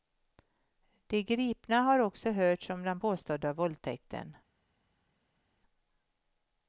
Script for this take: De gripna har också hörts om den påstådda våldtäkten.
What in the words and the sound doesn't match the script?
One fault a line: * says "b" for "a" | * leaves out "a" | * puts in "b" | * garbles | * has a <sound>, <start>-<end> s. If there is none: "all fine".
all fine